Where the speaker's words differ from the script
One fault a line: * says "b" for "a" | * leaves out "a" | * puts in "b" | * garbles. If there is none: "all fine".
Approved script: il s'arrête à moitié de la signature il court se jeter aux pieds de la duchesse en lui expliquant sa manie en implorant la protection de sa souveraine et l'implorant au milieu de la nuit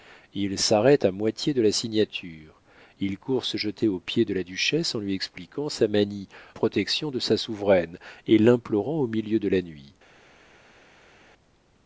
* leaves out "en implorant la"